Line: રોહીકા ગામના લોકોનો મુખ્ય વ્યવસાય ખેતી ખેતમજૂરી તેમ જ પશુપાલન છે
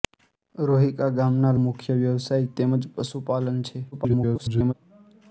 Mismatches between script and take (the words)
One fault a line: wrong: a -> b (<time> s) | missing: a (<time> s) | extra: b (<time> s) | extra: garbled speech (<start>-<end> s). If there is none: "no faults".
missing: લોકોનો (1.5 s)
missing: ખેતી ખેતમજૂરી (2.5 s)
extra: garbled speech (3.9-4.7 s)